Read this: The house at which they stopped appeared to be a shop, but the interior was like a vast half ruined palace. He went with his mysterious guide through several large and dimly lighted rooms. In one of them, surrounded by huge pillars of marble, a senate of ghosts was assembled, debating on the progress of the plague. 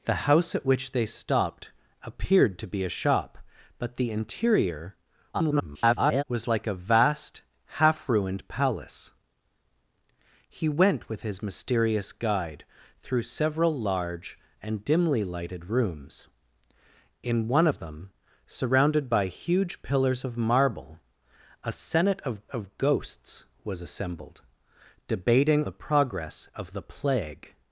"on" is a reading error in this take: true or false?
true